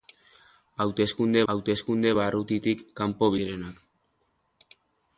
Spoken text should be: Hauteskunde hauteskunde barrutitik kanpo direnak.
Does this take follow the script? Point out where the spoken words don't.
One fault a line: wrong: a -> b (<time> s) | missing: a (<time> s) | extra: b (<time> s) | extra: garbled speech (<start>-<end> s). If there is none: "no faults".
no faults